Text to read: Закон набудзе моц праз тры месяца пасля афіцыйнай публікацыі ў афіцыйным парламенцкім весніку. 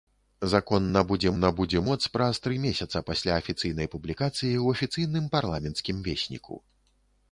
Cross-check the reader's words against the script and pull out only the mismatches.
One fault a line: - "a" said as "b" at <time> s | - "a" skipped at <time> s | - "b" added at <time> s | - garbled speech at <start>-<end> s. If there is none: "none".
- "набудзе" added at 1.4 s